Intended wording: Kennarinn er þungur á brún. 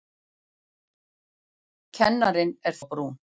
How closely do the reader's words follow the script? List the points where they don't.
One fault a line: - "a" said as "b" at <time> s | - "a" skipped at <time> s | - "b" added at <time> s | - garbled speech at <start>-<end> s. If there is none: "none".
- "þungur" skipped at 2.8 s